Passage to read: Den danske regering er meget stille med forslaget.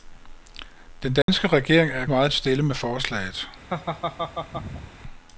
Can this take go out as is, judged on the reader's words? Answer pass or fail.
pass